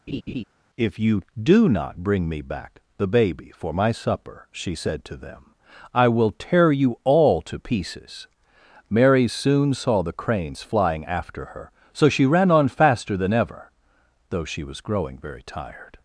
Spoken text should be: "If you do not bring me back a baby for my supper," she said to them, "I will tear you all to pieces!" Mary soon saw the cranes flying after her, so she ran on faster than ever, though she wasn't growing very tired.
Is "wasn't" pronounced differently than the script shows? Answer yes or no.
yes